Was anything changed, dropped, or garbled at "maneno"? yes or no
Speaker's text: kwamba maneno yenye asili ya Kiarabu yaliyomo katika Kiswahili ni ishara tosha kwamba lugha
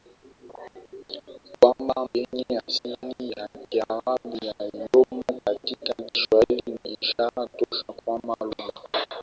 yes